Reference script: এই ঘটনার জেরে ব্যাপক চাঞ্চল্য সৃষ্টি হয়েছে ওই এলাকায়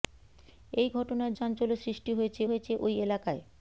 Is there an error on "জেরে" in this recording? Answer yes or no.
yes